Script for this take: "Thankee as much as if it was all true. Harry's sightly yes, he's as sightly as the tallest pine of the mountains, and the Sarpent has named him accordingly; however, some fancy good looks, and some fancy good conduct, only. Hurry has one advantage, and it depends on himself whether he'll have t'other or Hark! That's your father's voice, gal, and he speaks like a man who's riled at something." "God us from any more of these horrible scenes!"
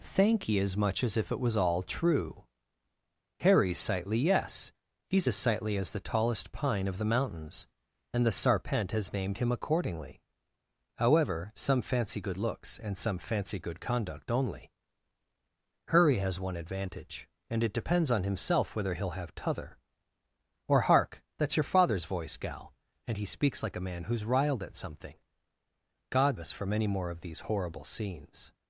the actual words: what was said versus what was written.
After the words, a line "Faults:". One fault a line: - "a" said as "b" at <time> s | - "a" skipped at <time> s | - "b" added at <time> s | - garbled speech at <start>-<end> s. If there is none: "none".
"Thankee as much as if it was all true. Harry's sightly yes, he's as sightly as the tallest pine of the mountains, and the Sarpent has named him accordingly; however, some fancy good looks, and some fancy good conduct, only. Hurry has one advantage, and it depends on himself whether he'll have t'other or Hark! That's your father's voice, gal, and he speaks like a man who's riled at something." "God us from any more of these horrible scenes!"
Faults:
none